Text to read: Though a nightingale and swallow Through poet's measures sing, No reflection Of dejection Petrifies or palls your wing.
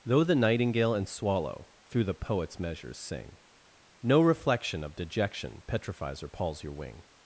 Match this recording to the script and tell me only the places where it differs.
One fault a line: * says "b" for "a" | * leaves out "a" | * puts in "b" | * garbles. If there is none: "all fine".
* says "the" for "a"
* puts in "the"